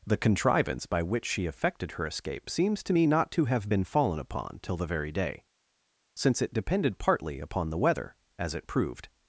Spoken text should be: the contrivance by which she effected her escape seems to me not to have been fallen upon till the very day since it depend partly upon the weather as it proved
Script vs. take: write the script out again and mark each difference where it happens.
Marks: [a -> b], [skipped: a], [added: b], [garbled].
the contrivance by which she effected her escape seems to me not to have been fallen upon till the very day since it [depend -> depended] partly upon the weather as it proved